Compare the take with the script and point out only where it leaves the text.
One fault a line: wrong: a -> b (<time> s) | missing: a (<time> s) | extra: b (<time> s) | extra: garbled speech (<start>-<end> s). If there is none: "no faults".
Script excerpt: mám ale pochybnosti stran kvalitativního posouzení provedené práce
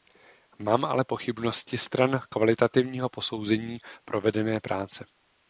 no faults